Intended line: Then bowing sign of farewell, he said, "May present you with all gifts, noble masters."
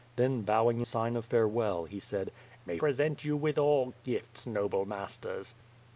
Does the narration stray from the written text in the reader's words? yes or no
no